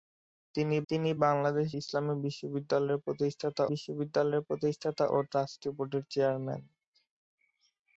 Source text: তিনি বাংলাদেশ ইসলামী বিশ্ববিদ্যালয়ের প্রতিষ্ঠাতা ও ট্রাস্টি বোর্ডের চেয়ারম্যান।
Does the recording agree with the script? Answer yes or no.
no